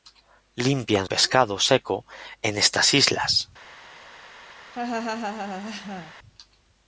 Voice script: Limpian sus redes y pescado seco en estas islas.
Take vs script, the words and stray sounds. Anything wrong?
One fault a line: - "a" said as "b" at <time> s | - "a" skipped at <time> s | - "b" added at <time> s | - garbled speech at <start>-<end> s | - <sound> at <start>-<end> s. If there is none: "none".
- "sus redes y" skipped at 1.1 s
- laugh at 4.7-6.1 s